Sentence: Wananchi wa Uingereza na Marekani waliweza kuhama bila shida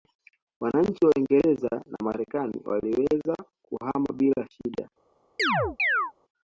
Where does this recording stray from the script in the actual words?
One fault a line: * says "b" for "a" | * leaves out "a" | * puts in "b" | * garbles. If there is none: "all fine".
all fine